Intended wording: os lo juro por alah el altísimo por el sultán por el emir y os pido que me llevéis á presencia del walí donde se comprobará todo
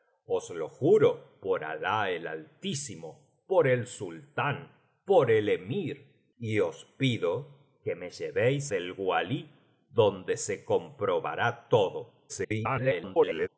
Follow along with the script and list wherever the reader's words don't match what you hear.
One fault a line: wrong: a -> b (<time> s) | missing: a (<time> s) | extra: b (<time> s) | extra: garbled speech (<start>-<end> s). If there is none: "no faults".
missing: á presencia (8.7 s)
extra: garbled speech (12.3-13.5 s)